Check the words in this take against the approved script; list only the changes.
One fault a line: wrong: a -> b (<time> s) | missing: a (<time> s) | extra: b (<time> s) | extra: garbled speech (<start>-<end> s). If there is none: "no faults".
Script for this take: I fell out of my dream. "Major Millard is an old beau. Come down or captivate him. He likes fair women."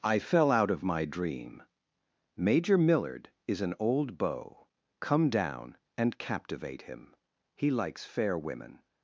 wrong: or -> and (6.0 s)